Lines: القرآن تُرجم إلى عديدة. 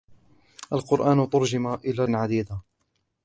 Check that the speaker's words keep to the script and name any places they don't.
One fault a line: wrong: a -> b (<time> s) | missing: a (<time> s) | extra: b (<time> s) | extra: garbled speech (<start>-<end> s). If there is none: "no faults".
no faults